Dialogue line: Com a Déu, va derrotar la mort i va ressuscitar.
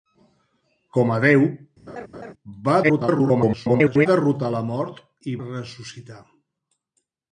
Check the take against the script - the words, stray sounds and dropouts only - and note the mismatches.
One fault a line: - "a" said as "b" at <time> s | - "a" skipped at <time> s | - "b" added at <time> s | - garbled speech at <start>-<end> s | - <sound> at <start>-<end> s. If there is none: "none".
- laugh at 1.9-2.3 s
- garbled speech at 2.8-4.1 s
- "va" skipped at 5.4 s